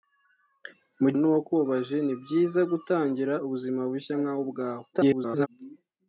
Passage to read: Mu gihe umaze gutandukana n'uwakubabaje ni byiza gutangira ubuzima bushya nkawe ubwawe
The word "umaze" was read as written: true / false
false